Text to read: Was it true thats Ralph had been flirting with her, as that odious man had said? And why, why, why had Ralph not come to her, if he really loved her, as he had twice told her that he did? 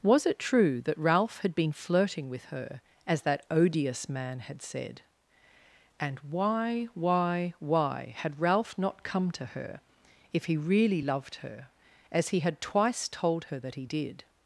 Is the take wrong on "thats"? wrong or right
wrong